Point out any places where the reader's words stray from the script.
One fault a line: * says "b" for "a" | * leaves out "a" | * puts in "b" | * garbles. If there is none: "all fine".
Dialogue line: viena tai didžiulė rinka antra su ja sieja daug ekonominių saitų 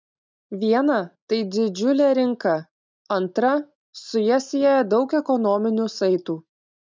all fine